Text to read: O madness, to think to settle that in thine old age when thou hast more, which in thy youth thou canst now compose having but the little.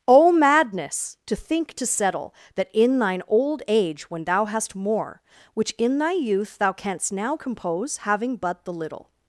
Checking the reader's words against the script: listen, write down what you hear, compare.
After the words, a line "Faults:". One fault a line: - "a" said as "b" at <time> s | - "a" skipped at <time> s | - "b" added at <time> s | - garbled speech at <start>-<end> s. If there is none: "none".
O madness, to think to settle that in thine old age when thou hast more, which in thy youth thou canst now compose having but the little.
Faults:
none